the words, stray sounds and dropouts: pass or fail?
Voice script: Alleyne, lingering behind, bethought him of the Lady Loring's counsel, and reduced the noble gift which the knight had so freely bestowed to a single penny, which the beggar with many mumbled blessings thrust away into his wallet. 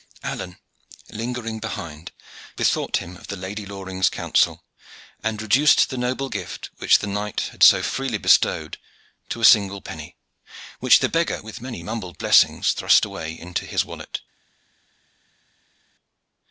pass